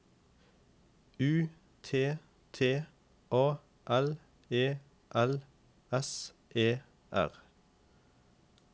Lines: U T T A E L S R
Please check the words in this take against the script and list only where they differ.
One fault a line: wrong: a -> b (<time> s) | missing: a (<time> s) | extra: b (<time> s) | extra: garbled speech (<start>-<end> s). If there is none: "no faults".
extra: L (3.9 s)
extra: E (6.5 s)